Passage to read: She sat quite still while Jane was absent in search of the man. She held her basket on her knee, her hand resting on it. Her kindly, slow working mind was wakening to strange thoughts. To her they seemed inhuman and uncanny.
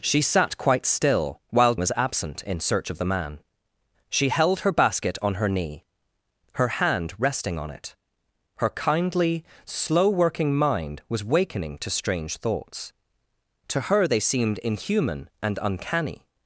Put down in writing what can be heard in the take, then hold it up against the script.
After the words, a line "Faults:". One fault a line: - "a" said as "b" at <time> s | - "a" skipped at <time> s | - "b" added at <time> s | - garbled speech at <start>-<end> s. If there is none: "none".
She sat quite still while Was absent in search of the man. She held her basket on her knee, her hand resting on it. Her kindly, slow working mind was wakening to strange thoughts. To her they seemed inhuman and uncanny.
Faults:
- "Jane" skipped at 1.8 s